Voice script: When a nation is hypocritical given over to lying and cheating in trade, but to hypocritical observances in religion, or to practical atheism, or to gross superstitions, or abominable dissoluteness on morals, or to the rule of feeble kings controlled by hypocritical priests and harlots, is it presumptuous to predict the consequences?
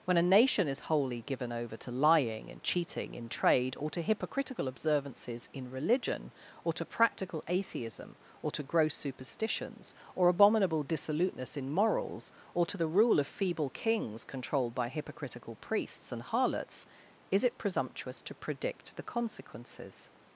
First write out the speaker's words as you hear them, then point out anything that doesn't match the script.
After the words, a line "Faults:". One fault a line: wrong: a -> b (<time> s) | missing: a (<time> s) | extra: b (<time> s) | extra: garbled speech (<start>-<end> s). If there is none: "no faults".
When a nation is wholly given over to lying and cheating in trade, or to hypocritical observances in religion, or to practical atheism, or to gross superstitions, or abominable dissoluteness in morals, or to the rule of feeble kings controlled by hypocritical priests and harlots, is it presumptuous to predict the consequences?
Faults:
wrong: hypocritical -> wholly (0.9 s)
wrong: but -> or (3.8 s)
wrong: on -> in (11.6 s)